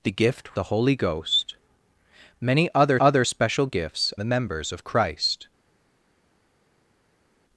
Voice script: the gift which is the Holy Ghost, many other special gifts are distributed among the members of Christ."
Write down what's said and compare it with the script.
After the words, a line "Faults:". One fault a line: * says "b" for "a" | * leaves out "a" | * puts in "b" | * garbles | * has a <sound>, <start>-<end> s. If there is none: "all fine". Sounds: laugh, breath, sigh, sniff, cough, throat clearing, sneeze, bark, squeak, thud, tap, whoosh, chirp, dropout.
the gift the Holy Ghost, many other other special gifts the members of Christ."
Faults:
* leaves out "which is"
* puts in "other"
* leaves out "are distributed among"